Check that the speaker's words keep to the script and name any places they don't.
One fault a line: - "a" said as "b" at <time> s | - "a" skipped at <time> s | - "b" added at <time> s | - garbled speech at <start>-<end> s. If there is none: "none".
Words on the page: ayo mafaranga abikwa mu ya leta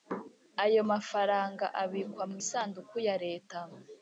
- "isanduku" added at 2.4 s